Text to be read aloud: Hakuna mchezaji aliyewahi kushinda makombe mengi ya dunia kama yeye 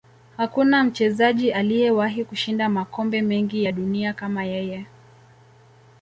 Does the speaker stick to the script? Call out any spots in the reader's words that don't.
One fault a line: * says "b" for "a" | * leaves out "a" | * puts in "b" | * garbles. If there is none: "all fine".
all fine